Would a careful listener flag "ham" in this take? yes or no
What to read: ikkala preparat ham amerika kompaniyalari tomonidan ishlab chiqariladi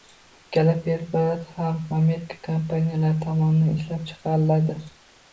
no